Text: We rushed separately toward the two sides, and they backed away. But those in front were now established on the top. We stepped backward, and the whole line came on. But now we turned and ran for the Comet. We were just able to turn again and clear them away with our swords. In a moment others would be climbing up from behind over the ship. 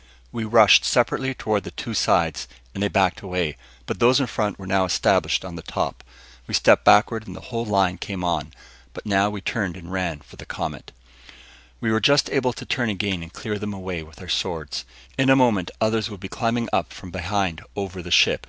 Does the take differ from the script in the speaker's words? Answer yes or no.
no